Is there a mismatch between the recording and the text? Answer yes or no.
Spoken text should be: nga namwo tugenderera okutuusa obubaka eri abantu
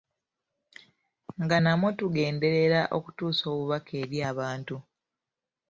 no